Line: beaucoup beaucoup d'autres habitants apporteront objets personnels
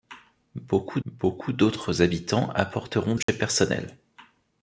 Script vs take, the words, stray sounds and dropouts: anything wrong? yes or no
yes